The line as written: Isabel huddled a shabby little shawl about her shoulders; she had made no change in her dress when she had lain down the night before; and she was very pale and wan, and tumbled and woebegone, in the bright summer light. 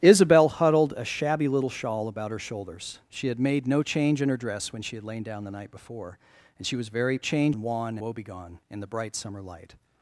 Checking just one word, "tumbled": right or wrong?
wrong